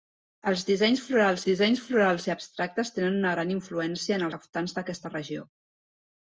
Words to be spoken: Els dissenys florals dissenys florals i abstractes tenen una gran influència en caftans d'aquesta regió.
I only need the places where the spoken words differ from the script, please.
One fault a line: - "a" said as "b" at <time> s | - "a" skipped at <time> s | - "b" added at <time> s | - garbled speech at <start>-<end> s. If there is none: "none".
none